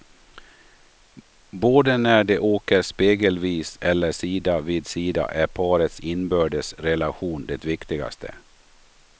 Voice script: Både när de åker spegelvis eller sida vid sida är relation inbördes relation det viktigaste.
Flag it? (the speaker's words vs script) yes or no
yes